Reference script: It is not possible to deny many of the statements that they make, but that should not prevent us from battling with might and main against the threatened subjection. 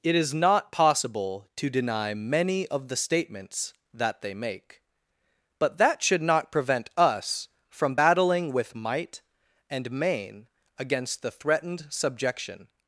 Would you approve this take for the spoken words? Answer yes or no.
yes